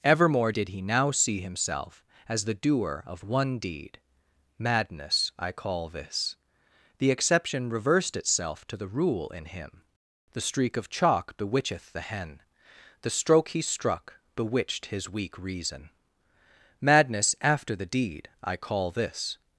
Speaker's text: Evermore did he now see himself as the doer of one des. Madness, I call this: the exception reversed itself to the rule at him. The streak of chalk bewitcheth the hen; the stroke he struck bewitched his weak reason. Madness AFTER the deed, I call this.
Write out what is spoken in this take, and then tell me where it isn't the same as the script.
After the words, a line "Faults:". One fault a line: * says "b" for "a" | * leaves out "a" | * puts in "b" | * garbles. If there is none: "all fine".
Evermore did he now see himself as the doer of one deed. Madness, I call this: the exception reversed itself to the rule in him. The streak of chalk bewitcheth the hen; the stroke he struck bewitched his weak reason. Madness AFTER the deed, I call this.
Faults:
* says "deed" for "des"
* says "in" for "at"